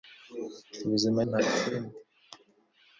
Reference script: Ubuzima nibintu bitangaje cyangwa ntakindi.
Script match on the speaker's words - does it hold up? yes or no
no